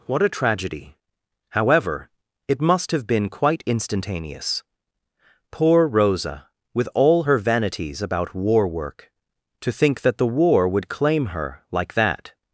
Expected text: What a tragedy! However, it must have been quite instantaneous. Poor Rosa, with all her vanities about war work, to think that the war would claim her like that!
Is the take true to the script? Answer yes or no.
yes